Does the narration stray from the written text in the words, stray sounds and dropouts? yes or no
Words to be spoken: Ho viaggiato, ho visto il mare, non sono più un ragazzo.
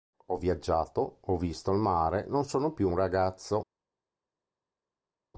no